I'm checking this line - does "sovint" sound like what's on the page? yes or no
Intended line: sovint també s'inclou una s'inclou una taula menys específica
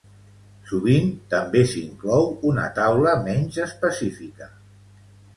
yes